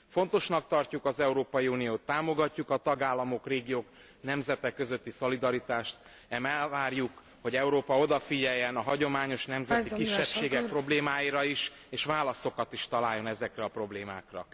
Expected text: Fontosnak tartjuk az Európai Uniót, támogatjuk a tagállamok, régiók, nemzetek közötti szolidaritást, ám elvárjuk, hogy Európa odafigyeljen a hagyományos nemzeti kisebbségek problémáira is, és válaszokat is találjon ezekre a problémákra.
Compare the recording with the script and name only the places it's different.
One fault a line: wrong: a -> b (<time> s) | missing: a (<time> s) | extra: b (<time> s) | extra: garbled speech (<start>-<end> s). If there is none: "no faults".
no faults